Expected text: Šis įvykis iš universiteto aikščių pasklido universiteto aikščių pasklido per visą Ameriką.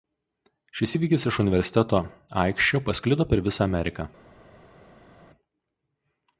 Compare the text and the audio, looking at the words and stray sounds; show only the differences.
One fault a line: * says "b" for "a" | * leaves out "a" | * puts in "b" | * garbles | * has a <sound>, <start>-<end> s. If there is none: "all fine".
* leaves out "universiteto aikščių pasklido"